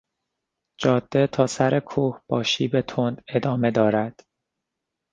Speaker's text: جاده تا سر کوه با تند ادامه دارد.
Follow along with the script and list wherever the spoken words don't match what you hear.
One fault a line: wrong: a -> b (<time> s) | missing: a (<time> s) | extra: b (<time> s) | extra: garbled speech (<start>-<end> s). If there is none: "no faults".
extra: شیب (2.4 s)